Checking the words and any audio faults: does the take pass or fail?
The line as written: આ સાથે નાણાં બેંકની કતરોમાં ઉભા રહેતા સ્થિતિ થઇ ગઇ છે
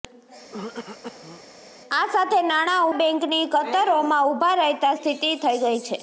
fail